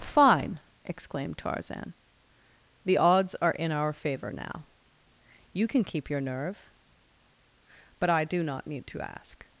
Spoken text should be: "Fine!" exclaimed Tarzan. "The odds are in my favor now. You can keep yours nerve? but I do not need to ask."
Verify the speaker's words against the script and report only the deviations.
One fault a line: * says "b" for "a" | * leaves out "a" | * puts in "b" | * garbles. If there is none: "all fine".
* says "our" for "my"
* says "your" for "yours"